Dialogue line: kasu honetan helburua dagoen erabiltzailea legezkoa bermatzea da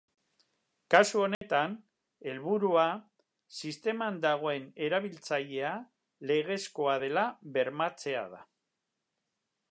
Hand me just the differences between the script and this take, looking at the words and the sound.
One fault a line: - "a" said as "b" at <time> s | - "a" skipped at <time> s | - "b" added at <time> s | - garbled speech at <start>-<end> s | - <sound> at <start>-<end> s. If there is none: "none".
- dropout at 1.3-1.4 s
- "sisteman" added at 3.6 s
- "dela" added at 7.0 s